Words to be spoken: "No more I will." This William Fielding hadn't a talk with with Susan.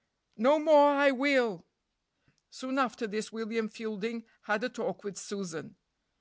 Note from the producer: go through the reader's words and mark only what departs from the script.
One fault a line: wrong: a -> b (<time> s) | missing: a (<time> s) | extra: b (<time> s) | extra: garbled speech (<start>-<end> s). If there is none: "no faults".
extra: Soon after (2.5 s)
wrong: hadn't -> had (4.4 s)
missing: with (5.2 s)